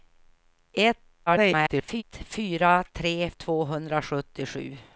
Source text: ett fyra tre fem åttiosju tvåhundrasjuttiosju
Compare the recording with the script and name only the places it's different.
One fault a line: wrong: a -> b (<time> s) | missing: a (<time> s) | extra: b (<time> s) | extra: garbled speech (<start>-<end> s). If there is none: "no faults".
extra: garbled speech (1.3-2.0 s)
missing: fem åttiosju (3.3 s)